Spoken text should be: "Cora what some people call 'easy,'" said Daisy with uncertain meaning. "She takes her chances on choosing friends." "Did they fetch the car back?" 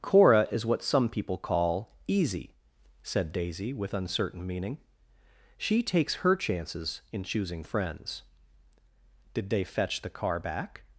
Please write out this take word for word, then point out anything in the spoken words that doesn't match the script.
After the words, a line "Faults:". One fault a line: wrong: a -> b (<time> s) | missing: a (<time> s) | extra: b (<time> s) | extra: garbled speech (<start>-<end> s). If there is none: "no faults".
"Cora is what some people call 'easy,'" said Daisy with uncertain meaning. "She takes her chances in choosing friends." "Did they fetch the car back?"
Faults:
extra: is (0.5 s)
wrong: on -> in (7.1 s)